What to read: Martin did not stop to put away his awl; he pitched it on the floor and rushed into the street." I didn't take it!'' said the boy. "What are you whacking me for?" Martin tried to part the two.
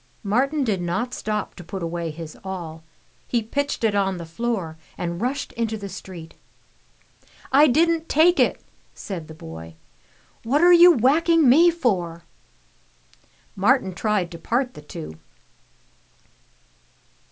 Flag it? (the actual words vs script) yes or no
no